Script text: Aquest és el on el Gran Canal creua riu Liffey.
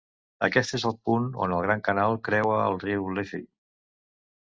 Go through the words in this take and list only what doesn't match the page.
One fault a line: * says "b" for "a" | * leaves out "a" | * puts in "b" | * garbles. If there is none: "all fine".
* puts in "punt"
* puts in "el"